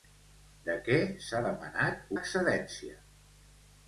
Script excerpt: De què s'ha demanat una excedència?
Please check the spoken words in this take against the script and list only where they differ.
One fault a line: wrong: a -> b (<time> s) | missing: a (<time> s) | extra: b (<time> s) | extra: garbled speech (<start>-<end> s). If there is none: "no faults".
missing: una (2.2 s)